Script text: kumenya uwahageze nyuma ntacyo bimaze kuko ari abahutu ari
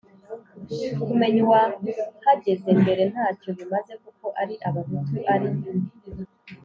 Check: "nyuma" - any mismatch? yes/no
yes